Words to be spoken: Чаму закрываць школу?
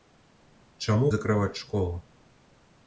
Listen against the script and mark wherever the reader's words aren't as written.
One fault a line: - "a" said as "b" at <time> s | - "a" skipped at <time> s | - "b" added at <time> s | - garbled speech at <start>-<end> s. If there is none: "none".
none